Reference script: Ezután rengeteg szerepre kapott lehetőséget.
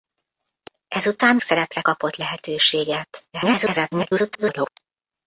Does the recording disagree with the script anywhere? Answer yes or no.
yes